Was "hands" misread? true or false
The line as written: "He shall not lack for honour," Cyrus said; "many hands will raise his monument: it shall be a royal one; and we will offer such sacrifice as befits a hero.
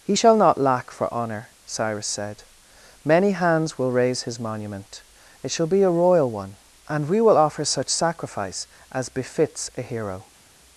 false